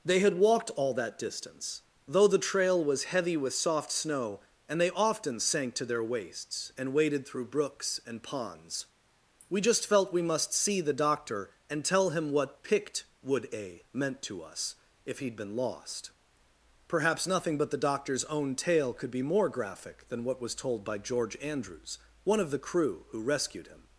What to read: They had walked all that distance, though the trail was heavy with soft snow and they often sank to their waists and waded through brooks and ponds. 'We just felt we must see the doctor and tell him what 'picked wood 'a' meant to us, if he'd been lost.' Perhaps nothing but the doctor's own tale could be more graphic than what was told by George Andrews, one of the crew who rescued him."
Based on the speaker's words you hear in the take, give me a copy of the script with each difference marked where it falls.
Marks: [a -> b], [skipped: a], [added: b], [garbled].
They had walked all that distance, though the trail was heavy with soft snow and they often sank to their waists and waded through brooks and ponds. 'We just felt we must see the doctor and tell him what 'picked wood 'a' meant to us, if he'd been lost.' Perhaps nothing but the doctor's own tale could be more graphic than what was told by George Andrews, one of the crew who rescued him."